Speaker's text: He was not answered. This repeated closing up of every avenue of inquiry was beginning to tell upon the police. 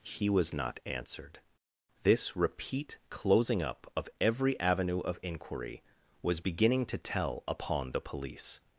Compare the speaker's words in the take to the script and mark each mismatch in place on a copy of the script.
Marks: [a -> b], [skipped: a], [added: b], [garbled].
He was not answered. This [repeated -> repeat] closing up of every avenue of inquiry was beginning to tell upon the police.